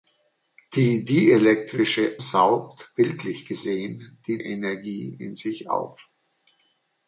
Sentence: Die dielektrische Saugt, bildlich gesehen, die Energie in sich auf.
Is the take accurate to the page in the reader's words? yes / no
yes